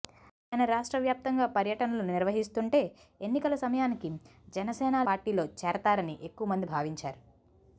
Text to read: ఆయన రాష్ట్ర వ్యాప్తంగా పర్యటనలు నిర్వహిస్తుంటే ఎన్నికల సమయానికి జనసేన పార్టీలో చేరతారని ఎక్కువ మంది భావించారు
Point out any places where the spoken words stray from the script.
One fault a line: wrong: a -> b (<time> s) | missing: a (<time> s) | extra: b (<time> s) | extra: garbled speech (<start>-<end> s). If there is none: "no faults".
no faults